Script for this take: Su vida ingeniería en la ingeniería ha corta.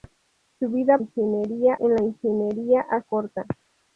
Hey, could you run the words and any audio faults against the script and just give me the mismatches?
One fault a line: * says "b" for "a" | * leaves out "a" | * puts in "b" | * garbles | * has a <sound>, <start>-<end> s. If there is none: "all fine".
all fine